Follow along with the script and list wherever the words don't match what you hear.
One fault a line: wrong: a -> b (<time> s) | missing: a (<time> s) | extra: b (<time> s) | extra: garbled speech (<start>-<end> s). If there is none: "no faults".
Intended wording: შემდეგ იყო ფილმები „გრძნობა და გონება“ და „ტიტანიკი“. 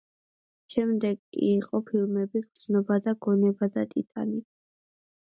no faults